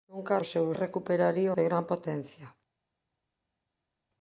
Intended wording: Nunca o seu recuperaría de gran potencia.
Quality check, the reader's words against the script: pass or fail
pass